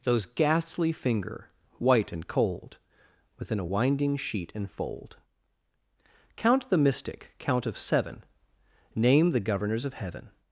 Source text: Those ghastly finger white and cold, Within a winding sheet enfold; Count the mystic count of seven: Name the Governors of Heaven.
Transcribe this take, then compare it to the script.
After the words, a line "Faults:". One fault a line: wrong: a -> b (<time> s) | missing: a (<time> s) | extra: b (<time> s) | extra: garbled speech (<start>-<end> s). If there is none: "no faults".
Those ghastly finger white and cold, Within a winding sheet enfold; Count the mystic count of seven: Name the Governors of Heaven.
Faults:
no faults